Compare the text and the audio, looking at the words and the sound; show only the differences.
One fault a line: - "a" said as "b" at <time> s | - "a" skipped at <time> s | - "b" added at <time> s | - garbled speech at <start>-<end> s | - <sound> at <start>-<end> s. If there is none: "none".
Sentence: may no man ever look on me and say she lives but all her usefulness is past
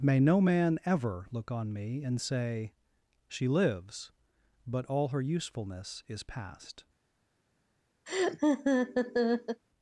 - laugh at 8.1-9.6 s